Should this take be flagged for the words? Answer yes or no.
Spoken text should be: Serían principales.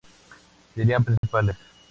no